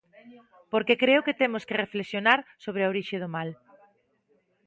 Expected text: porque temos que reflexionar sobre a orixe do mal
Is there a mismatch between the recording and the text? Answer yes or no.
yes